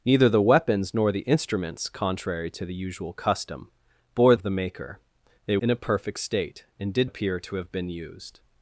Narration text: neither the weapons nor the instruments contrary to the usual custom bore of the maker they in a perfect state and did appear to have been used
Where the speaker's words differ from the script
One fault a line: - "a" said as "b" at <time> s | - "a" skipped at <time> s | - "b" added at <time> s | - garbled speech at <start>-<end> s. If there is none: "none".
none